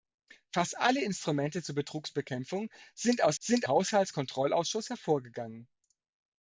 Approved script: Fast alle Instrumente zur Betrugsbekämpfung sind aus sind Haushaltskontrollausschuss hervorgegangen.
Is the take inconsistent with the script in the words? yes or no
no